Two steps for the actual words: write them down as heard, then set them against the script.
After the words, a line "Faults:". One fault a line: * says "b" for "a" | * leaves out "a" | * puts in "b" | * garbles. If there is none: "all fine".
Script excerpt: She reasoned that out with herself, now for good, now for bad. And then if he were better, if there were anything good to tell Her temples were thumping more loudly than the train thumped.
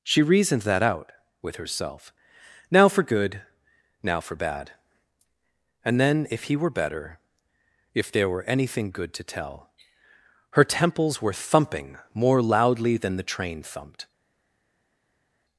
She reasoned that out with herself, now for good, now for bad. And then if he were better, if there were anything good to tell Her temples were thumping more loudly than the train thumped.
Faults:
all fine